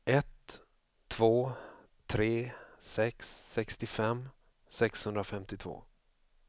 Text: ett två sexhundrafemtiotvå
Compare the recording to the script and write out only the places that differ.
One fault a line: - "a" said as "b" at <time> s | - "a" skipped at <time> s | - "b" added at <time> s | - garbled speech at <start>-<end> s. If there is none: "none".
- "tre sex sextiofem" added at 2.1 s